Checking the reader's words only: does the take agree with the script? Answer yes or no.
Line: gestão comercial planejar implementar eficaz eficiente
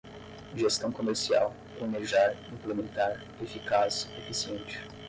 yes